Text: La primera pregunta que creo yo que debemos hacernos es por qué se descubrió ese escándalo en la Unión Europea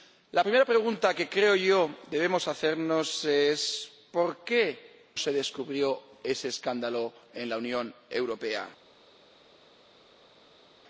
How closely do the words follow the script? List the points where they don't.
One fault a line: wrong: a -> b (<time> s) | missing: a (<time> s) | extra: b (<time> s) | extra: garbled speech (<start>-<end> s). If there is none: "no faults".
no faults